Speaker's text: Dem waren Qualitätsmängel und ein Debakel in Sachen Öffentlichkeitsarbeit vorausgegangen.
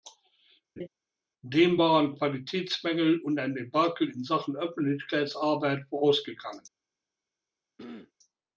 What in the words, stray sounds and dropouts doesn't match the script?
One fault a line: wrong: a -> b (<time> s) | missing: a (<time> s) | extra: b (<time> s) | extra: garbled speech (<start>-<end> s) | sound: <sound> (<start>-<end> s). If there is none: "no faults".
sound: laugh (0.8-0.9 s)
sound: throat clearing (7.8-8.1 s)